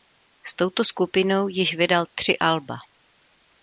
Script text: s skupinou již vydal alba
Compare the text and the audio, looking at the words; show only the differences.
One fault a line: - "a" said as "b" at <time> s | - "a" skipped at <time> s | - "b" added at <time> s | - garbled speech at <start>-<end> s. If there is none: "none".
- "touto" added at 0.6 s
- "tři" added at 2.1 s